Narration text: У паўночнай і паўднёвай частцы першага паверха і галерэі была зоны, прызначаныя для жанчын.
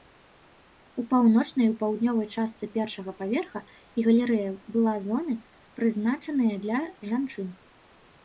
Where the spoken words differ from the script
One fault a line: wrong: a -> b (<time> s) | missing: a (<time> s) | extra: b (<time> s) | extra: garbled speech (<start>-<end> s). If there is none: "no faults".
no faults